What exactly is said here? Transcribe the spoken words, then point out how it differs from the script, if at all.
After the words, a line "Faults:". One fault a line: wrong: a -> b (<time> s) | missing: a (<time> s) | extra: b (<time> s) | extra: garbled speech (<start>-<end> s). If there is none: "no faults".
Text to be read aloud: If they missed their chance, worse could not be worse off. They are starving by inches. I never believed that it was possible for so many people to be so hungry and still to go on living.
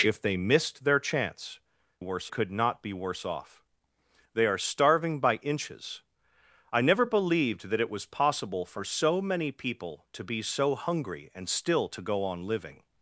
If they missed their chance, worse could not be worse off. They are starving by inches. I never believed that it was possible for so many people to be so hungry and still to go on living.
Faults:
no faults